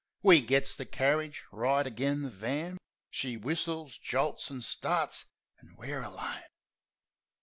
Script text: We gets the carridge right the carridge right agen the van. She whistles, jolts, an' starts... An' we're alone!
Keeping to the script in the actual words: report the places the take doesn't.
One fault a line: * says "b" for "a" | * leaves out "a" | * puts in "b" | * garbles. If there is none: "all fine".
* leaves out "the carridge right"